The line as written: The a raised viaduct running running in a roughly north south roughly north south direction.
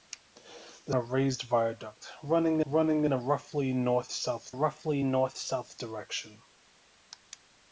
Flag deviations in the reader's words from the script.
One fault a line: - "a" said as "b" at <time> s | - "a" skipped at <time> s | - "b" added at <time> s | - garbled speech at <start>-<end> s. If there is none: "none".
none